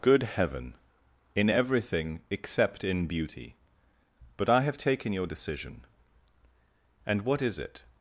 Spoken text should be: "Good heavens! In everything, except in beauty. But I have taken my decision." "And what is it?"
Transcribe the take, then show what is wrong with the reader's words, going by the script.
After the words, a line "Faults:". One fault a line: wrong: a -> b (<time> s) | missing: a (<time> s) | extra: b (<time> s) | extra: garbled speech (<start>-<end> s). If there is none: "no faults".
"Good heaven! In everything, except in beauty. But I have taken your decision." "And what is it?"
Faults:
wrong: heavens -> heaven (0.2 s)
wrong: my -> your (5.1 s)